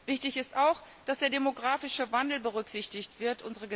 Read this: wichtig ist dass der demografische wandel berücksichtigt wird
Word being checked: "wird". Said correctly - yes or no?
yes